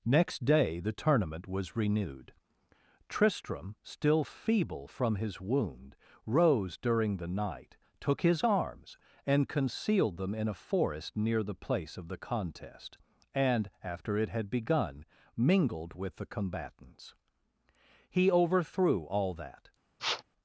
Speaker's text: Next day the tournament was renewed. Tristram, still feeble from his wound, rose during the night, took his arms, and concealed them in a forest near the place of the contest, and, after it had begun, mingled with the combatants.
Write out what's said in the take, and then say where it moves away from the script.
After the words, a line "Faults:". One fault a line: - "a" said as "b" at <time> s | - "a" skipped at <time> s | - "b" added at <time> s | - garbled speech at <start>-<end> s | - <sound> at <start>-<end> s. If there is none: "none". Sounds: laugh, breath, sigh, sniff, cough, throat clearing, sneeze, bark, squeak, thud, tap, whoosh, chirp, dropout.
Next day the tournament was renewed. Tristram, still feeble from his wound, rose during the night, took his arms, and concealed them in a forest near the place of the contest, and, after it had begun, mingled with the combatants. He overthrew all that
Faults:
- "He overthrew all that" added at 18.1 s
- sniff at 20.0-20.2 s